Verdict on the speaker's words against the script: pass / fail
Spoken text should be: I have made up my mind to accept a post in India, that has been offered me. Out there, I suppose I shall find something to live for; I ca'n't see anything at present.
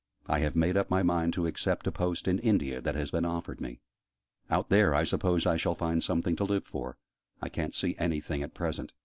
pass